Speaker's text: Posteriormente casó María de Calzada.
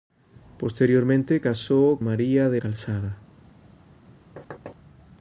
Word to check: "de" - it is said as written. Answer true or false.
true